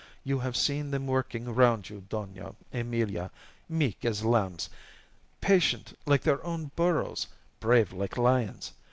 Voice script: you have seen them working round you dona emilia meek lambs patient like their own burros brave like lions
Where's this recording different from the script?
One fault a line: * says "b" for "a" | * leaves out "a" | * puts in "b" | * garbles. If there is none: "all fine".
* puts in "as"